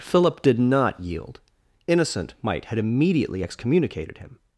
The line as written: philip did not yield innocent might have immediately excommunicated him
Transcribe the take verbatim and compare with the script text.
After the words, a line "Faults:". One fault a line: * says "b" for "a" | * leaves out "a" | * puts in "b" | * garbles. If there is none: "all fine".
philip did not yield innocent might had immediately excommunicated him
Faults:
* says "had" for "have"